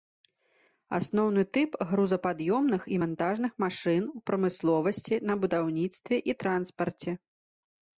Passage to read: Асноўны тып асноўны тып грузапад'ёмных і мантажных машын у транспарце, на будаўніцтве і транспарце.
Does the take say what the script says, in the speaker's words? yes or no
no